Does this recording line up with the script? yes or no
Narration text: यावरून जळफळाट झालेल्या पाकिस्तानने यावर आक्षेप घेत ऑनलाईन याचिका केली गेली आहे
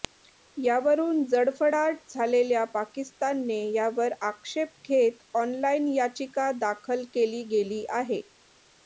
no